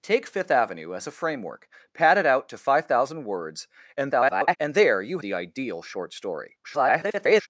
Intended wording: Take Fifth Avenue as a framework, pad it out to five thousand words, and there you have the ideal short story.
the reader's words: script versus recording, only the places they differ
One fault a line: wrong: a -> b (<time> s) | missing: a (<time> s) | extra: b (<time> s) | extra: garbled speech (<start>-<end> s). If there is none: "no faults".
extra: garbled speech (4.0-4.6 s)
missing: have (5.2 s)
extra: garbled speech (6.6-7.5 s)